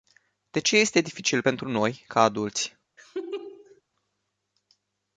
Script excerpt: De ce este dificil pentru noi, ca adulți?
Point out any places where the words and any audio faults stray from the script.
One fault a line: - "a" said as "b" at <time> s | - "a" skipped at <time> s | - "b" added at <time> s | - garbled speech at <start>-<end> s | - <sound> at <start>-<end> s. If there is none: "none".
- laugh at 3.0-3.8 s